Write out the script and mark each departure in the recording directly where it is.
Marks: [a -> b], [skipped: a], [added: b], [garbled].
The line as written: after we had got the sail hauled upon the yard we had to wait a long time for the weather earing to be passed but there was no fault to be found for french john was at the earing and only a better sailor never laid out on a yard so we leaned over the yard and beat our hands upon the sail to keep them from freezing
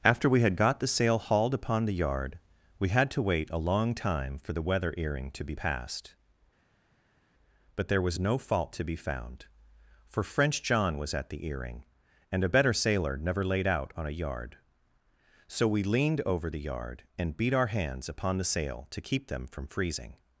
after we had got the sail hauled upon the yard we had to wait a long time for the weather earing to be passed but there was no fault to be found for french john was at the earing and [skipped: only] a better sailor never laid out on a yard so we leaned over the yard and beat our hands upon the sail to keep them from freezing